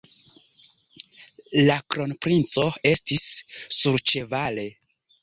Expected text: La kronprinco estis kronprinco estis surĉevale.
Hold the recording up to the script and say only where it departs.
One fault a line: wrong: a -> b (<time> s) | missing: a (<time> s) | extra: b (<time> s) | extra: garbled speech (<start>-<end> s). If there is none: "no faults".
missing: kronprinco estis (3.3 s)